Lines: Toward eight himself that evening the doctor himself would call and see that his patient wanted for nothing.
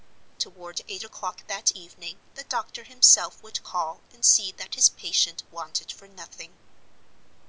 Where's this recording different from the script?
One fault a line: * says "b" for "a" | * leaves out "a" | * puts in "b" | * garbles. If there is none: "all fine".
* says "o'clock" for "himself"